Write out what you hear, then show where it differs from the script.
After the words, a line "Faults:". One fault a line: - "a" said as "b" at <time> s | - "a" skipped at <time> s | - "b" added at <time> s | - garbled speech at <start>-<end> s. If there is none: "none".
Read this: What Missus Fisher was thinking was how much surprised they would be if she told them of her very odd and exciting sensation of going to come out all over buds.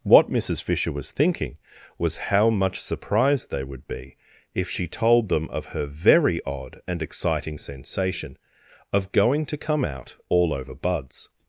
What Missus Fisher was thinking was how much surprised they would be if she told them of her very odd and exciting sensation of going to come out all over buds.
Faults:
none